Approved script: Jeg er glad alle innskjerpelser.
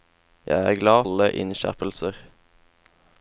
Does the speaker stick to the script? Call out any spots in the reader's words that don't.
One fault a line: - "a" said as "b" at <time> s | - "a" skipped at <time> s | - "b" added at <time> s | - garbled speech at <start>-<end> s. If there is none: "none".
none